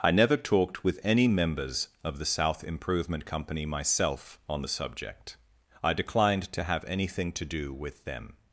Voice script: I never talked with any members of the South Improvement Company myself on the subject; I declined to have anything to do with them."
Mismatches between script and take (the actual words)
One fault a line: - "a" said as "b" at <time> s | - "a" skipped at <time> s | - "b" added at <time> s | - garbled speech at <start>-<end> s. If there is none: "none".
none